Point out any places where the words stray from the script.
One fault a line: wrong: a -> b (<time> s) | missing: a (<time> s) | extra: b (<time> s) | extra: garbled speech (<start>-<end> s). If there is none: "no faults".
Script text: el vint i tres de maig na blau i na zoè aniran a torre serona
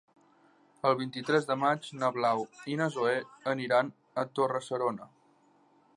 no faults